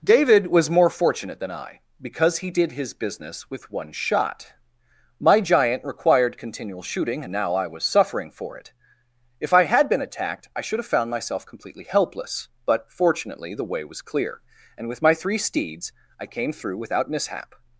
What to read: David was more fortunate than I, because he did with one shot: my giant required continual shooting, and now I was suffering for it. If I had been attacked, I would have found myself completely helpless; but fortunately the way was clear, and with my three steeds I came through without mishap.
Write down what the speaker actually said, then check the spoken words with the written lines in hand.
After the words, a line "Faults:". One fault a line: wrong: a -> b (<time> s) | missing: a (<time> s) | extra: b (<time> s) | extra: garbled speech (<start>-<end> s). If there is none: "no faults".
David was more fortunate than I, because he did his business with one shot: my giant required continual shooting, and now I was suffering for it. If I had been attacked, I should have found myself completely helpless; but fortunately the way was clear, and with my three steeds I came through without mishap.
Faults:
extra: his business (2.7 s)
wrong: would -> should (10.6 s)